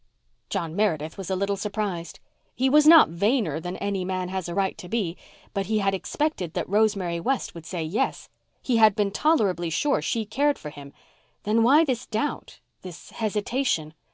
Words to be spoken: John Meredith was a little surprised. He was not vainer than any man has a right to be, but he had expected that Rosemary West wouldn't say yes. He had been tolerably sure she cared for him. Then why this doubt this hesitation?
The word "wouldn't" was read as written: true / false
false